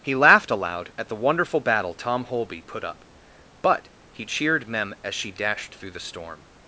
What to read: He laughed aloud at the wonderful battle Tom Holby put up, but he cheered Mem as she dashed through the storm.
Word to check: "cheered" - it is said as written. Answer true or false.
true